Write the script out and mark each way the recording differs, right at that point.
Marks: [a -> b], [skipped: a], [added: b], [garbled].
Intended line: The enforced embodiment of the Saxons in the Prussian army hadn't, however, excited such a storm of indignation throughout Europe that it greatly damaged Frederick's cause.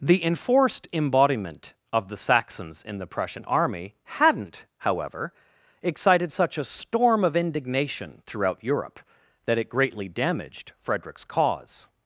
The enforced embodiment of the Saxons in the Prussian army hadn't, however, excited such a storm of indignation throughout Europe that it greatly damaged Frederick's cause.